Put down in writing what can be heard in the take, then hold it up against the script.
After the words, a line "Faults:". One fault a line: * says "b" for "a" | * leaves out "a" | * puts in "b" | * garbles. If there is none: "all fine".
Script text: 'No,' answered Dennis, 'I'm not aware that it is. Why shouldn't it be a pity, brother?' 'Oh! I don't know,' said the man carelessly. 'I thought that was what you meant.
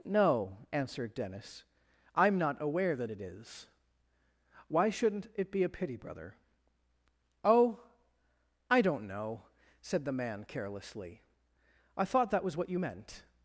'No,' answered Dennis, 'I'm not aware that it is. Why shouldn't it be a pity, brother?' 'Oh! I don't know,' said the man carelessly. 'I thought that was what you meant.
Faults:
all fine